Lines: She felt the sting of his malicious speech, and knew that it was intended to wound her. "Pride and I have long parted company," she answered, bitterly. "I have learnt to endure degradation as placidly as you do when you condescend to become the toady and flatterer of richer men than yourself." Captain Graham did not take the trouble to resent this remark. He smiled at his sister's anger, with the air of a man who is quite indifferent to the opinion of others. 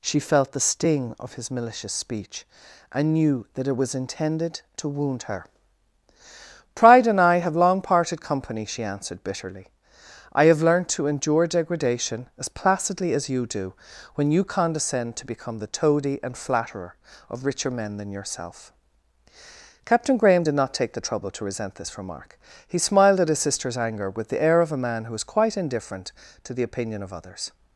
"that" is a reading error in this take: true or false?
false